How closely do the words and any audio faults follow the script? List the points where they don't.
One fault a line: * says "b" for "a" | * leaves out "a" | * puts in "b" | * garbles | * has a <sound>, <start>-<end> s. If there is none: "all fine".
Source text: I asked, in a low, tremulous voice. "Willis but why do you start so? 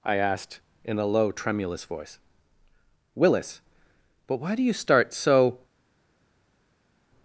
all fine